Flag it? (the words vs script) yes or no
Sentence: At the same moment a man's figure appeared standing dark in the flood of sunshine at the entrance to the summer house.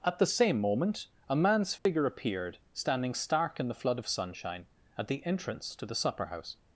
yes